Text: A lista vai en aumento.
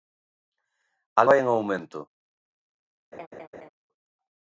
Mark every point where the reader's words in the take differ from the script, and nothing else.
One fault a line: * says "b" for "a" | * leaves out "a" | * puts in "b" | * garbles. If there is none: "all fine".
* leaves out "lista"